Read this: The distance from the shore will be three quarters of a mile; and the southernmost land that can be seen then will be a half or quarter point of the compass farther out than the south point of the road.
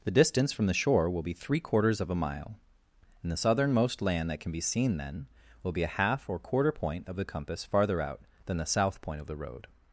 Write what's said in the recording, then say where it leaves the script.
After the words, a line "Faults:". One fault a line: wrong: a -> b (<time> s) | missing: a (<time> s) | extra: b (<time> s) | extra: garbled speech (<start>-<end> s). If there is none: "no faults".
The distance from the shore will be three quarters of a mile; and the southernmost land that can be seen then will be a half or quarter point of the compass farther out than the south point of the road.
Faults:
no faults